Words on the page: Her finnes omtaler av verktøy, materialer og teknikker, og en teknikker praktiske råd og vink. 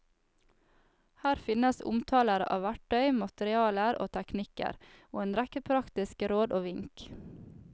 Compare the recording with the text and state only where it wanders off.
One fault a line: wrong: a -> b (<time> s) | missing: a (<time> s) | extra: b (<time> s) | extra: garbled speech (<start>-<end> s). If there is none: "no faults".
wrong: teknikker -> rekke (5.4 s)